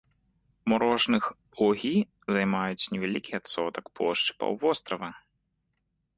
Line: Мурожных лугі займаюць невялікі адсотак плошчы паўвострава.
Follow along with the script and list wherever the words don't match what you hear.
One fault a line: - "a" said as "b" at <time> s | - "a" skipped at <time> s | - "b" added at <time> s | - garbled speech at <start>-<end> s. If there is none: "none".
none